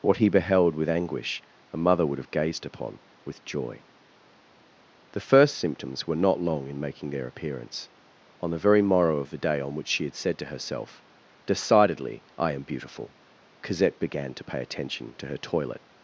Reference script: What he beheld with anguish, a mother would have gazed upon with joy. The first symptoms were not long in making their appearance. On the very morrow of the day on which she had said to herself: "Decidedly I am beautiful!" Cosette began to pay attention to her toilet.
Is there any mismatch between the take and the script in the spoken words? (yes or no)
no